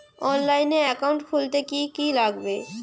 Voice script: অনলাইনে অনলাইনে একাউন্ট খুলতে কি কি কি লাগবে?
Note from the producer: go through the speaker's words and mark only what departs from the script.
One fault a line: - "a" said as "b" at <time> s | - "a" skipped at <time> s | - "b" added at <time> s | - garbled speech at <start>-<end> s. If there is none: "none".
- "অনলাইনে" skipped at 0.8 s
- "কি" skipped at 2.1 s